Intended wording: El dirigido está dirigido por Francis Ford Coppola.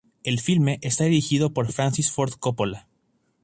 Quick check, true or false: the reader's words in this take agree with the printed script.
false